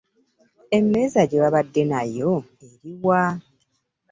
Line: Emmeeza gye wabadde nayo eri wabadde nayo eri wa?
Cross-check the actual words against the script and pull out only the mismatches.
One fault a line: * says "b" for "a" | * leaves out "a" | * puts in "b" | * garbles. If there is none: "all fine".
* leaves out "wabadde nayo eri"